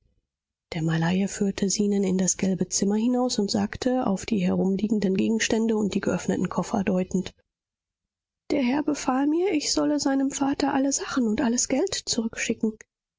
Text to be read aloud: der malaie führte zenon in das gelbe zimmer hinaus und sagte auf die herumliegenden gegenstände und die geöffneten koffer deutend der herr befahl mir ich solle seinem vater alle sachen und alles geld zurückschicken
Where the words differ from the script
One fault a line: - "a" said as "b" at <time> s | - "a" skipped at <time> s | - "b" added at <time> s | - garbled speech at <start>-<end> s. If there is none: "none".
none